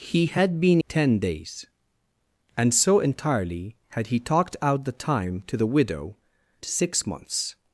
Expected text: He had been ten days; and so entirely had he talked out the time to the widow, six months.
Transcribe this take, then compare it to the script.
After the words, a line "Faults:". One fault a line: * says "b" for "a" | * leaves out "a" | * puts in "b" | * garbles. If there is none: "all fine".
He had been ten days; and so entirely had he talked out the time to the widow, six months.
Faults:
all fine